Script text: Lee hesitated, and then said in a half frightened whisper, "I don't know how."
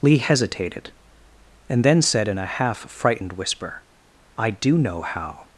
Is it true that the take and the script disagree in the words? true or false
true